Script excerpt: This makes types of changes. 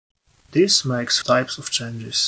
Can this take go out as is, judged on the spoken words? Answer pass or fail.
pass